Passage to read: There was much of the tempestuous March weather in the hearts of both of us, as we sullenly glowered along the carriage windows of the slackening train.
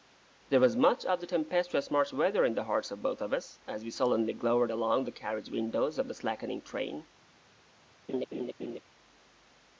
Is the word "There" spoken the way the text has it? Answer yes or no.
yes